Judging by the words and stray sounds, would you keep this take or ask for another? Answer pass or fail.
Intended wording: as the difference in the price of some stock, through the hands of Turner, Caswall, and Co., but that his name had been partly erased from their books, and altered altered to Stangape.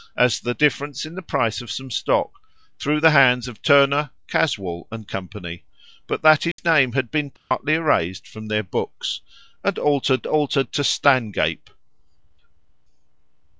fail